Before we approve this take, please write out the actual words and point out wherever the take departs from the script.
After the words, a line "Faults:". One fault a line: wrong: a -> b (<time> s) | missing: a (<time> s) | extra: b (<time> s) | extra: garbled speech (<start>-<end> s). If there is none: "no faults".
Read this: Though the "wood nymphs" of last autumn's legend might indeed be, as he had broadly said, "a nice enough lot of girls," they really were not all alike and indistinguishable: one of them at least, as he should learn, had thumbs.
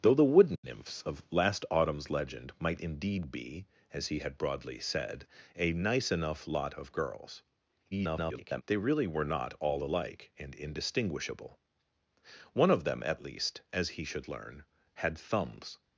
Though the "wood nymphs" of last autumn's legend might indeed be, as he had broadly said, "a nice enough lot of girls," [garbled] they really were not all alike and indistinguishable: one of them at least, as he should learn, had thumbs.
Faults:
extra: garbled speech (7.9-8.6 s)